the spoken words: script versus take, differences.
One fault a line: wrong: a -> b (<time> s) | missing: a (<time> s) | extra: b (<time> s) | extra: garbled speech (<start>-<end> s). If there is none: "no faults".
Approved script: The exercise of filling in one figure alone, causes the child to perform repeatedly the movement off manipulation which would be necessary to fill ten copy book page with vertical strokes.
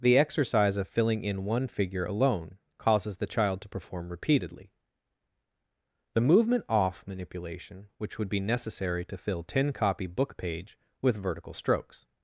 no faults